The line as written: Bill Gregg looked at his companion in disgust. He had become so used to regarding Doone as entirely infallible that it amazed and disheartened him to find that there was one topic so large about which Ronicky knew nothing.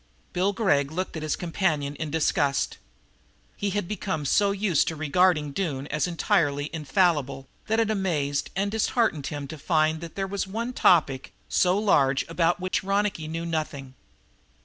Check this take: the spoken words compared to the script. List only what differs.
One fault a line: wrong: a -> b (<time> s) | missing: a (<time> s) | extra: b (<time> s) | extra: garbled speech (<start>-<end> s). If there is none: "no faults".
no faults